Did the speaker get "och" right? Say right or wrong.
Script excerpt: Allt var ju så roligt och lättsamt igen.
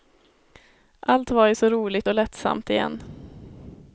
right